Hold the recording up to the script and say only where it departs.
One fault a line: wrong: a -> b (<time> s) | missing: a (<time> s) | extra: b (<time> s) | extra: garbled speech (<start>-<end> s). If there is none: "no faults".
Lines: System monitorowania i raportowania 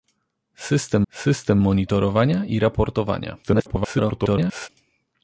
extra: system (1.1 s)
extra: garbled speech (3.4-4.7 s)